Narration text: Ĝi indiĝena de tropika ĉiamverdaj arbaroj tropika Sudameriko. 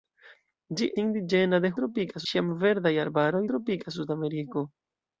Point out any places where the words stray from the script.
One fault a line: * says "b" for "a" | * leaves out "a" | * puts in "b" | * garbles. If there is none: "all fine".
all fine